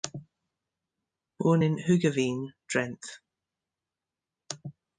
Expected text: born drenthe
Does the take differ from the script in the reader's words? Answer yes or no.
yes